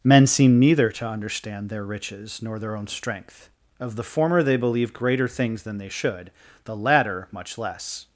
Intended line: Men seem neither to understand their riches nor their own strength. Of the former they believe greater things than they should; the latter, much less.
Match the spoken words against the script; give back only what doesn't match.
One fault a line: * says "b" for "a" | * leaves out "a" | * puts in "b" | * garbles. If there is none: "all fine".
all fine